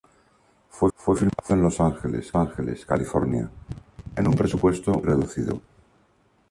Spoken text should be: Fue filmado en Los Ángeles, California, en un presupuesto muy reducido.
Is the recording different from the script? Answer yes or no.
yes